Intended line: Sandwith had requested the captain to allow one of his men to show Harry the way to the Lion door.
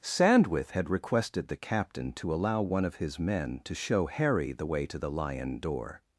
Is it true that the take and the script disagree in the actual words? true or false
false